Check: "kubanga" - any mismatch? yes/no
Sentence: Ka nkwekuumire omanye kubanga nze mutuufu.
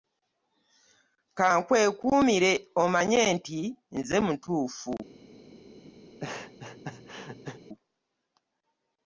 yes